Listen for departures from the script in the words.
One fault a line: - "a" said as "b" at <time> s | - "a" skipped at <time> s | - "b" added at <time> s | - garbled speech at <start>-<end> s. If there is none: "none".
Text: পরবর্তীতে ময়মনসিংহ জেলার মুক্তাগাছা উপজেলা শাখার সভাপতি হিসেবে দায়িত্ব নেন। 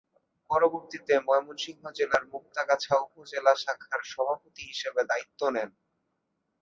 none